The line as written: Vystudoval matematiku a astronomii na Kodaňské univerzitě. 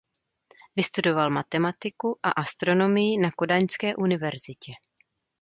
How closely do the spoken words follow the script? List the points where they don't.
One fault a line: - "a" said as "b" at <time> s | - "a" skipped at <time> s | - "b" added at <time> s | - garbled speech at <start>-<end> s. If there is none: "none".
none